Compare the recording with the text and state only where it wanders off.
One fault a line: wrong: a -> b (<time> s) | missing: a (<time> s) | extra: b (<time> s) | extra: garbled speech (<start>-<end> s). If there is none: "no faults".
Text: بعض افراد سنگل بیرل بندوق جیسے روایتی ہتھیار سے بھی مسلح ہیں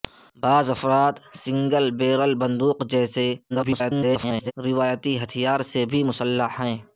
extra: garbled speech (3.5-4.5 s)